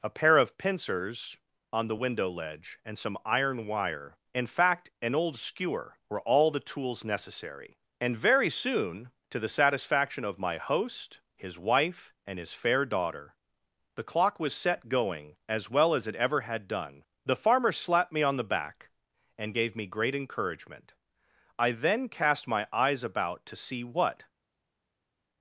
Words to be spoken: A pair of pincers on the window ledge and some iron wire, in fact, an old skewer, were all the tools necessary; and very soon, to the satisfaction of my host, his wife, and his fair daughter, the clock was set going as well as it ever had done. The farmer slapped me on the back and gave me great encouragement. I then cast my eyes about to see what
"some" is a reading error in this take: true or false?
false